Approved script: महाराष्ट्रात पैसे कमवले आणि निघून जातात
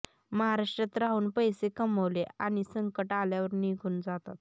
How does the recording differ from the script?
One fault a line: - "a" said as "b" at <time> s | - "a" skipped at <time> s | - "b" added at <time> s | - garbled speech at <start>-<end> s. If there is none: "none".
- "राहून" added at 1.0 s
- "संकट आल्यावर" added at 2.6 s